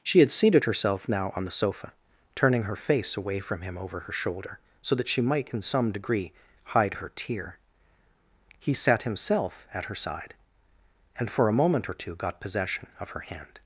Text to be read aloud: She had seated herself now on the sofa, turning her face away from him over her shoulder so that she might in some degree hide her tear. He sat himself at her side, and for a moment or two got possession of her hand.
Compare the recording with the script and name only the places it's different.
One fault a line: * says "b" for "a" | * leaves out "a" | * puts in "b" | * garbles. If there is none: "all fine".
all fine